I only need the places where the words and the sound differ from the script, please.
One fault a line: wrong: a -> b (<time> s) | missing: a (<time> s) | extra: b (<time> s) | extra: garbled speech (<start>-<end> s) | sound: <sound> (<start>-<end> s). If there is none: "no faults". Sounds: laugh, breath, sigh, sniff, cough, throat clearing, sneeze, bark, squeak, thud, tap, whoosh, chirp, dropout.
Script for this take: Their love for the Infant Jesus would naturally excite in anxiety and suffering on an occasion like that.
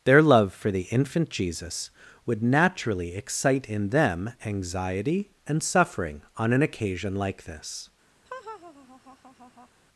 extra: them (3.9 s)
wrong: that -> this (7.4 s)
sound: laugh (8.3-9.7 s)